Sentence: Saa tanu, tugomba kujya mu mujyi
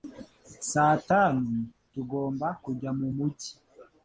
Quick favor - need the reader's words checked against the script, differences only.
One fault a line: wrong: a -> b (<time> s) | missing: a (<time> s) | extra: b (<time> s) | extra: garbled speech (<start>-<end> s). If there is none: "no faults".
no faults